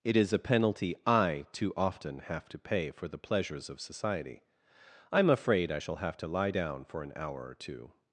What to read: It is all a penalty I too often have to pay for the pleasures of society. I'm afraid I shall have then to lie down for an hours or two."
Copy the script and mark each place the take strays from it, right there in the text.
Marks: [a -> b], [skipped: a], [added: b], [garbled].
It is [skipped: all] a penalty I too often have to pay for the pleasures of society. I'm afraid I shall have [skipped: then] to lie down for an [hours -> hour] or two."